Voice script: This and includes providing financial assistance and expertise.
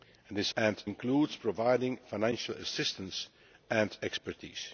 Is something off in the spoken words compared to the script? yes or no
no